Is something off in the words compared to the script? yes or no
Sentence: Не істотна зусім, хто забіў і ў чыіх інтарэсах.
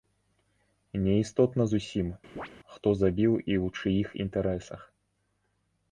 no